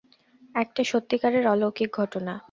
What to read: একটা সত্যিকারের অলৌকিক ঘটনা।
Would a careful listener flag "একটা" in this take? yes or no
no